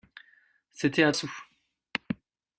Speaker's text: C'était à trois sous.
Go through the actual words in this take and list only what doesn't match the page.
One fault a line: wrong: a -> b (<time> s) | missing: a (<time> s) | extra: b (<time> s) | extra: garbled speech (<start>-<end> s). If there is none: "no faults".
missing: trois (1.1 s)